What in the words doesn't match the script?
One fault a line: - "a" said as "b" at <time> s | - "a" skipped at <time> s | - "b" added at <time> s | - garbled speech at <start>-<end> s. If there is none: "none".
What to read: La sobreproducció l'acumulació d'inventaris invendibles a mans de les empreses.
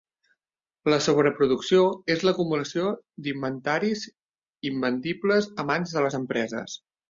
- "és" added at 2.1 s